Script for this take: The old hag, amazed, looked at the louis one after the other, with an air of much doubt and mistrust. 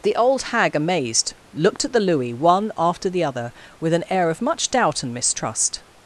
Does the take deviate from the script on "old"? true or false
false